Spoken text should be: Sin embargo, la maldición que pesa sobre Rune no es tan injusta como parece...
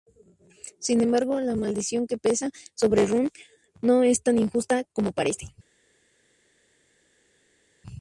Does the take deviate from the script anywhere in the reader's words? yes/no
no